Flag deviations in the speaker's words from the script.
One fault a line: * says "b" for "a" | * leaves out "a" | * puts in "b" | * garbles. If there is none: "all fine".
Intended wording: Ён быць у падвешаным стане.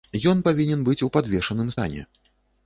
* puts in "павінен"